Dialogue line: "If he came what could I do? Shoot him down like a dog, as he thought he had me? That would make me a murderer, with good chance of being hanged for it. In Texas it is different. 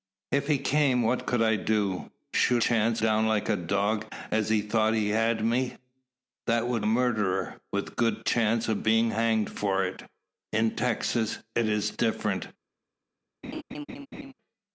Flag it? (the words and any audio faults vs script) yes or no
yes